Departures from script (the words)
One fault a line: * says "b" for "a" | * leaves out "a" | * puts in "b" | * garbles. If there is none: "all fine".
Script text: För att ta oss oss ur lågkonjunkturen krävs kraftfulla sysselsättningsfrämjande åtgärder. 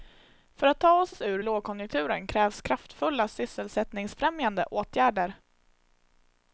all fine